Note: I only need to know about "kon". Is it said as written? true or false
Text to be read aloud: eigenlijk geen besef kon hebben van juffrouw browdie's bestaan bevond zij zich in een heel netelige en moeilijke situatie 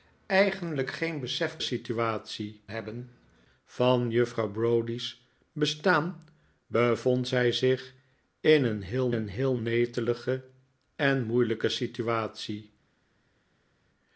false